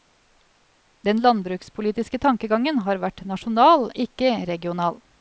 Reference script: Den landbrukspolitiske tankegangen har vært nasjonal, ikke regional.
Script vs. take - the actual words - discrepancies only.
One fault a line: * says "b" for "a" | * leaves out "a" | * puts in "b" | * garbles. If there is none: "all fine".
all fine